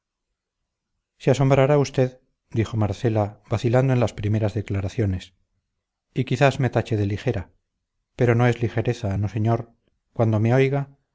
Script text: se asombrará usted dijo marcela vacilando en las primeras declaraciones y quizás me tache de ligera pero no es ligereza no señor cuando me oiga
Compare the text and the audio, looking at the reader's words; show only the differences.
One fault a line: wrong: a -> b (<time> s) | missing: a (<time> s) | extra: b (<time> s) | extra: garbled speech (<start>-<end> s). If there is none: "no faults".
no faults